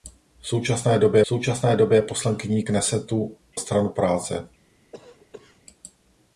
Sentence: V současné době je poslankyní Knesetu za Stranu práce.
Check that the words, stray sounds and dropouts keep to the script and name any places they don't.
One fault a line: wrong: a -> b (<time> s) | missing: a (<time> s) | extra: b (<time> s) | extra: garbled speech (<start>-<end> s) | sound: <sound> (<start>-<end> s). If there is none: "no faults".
extra: současné době (1.3 s)
missing: za (3.4 s)
sound: cough (4.9-5.6 s)